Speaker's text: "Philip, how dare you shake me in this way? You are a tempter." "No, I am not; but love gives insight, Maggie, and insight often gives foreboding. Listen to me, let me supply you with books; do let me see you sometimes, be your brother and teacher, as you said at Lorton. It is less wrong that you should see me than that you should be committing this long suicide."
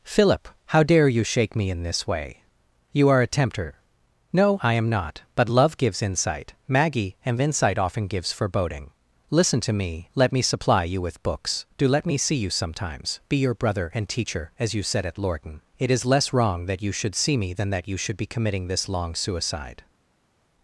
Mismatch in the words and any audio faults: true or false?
false